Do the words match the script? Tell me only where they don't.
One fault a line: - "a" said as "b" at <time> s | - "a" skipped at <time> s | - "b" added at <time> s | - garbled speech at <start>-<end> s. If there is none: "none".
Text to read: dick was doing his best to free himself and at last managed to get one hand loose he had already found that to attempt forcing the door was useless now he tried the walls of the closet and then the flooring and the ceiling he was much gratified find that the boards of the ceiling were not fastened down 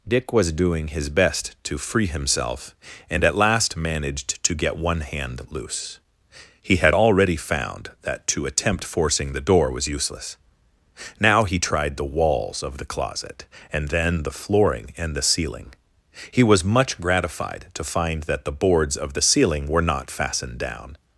- "to" added at 17.7 s